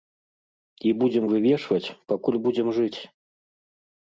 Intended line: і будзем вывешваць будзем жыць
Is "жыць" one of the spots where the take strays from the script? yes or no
no